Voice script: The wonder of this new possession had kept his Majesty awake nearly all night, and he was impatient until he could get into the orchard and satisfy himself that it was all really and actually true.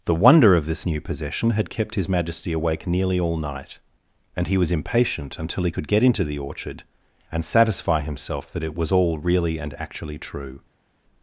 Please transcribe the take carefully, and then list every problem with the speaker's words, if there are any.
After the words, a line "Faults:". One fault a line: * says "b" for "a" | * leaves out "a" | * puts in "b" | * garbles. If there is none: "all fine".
The wonder of this new possession had kept his Majesty awake nearly all night, and he was impatient until he could get into the orchard and satisfy himself that it was all really and actually true.
Faults:
all fine